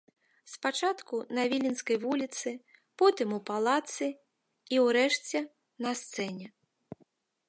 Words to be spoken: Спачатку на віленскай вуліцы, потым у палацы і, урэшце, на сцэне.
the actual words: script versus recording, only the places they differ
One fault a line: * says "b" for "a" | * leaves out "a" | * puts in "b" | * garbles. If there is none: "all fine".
all fine